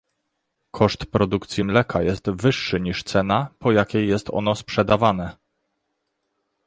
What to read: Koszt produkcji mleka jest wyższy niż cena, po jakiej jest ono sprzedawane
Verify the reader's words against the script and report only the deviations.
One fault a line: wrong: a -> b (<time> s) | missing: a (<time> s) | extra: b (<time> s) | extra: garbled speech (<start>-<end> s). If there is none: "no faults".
no faults